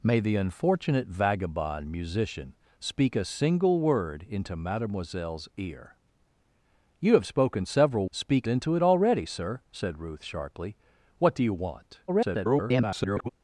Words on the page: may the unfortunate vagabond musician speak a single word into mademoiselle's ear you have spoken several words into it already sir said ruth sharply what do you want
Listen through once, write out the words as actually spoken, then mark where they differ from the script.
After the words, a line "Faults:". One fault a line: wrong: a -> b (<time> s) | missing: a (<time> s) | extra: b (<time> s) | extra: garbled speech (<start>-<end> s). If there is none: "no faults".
may the unfortunate vagabond musician speak a single word into mademoiselle's ear you have spoken several speak into it already sir said ruth sharply what do you want [garbled]
Faults:
wrong: words -> speak (8.1 s)
extra: garbled speech (12.1-13.3 s)